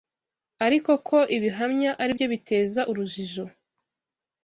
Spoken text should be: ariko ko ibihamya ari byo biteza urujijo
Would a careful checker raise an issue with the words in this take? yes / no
no